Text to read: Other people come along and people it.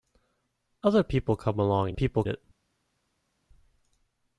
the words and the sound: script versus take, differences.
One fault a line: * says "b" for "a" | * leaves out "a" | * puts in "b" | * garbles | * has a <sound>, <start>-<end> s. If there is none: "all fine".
all fine